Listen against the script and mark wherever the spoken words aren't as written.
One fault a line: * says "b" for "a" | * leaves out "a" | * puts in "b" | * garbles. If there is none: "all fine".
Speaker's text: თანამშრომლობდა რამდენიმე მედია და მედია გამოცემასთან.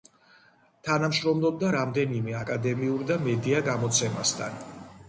* says "აკადემიურ" for "მედია"